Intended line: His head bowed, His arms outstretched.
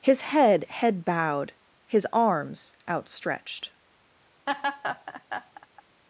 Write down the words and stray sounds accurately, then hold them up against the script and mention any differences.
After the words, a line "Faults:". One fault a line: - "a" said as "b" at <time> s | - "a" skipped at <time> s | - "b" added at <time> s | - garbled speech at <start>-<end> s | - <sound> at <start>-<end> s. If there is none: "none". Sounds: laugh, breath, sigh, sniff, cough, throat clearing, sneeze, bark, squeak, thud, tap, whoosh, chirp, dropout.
His head head bowed, His arms outstretched.
Faults:
- "head" added at 0.7 s
- laugh at 4.5-5.8 s